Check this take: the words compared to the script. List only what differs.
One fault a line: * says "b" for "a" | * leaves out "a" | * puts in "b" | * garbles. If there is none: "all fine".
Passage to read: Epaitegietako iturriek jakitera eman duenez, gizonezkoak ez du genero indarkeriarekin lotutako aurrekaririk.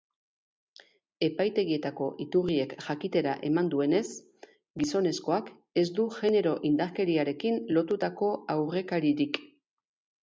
all fine